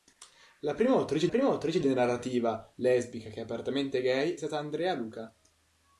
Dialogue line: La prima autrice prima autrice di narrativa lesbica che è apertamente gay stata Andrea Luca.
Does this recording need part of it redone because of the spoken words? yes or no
no